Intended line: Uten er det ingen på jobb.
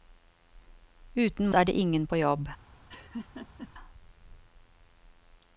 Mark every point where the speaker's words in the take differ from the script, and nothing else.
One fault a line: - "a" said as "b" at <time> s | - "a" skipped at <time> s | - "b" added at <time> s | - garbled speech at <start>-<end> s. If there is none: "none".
none